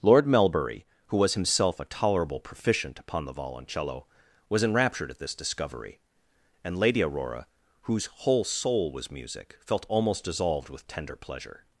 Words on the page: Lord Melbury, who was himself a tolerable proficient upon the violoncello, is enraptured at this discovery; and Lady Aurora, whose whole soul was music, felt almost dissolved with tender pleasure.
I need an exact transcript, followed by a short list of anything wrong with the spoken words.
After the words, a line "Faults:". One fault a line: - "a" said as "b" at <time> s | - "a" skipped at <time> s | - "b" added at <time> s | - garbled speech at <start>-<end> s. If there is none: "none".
Lord Melbury, who was himself a tolerable proficient upon the violoncello, was enraptured at this discovery; and Lady Aurora, whose whole soul was music, felt almost dissolved with tender pleasure.
Faults:
- "is" said as "was" at 4.5 s